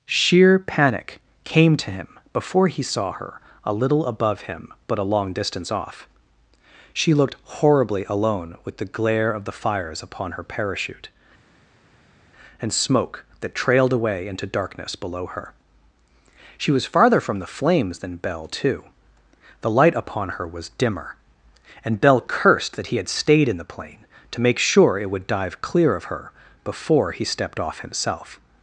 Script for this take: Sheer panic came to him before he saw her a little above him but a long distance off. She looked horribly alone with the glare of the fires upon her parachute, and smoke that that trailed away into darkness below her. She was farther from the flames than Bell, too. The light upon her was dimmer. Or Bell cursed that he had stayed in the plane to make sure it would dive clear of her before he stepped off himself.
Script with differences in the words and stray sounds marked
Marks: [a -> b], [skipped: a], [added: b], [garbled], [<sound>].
Sheer panic came to him before he saw her a little above him but a long distance off. She looked horribly alone with the glare of the fires upon her parachute, and smoke that [skipped: that] trailed away into darkness below her. She was farther from the flames than Bell, too. The light upon her was dimmer. [Or -> And] Bell cursed that he had stayed in the plane to make sure it would dive clear of her before he stepped off himself.